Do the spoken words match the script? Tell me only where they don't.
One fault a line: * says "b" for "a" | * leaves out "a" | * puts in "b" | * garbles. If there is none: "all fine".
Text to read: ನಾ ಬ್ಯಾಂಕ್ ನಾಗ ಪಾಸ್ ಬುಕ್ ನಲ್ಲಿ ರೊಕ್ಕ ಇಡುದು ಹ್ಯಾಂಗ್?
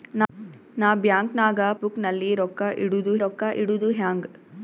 * leaves out "ಪಾಸ್"
* puts in "ರೊಕ್ಕ ಇಡುದು"